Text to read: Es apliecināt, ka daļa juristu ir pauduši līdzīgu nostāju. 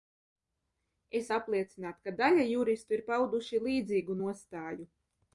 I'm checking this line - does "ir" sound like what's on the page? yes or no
yes